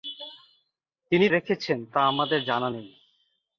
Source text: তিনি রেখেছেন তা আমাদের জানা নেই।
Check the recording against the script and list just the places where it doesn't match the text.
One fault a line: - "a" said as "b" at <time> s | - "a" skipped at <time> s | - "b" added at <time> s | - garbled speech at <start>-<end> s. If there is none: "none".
none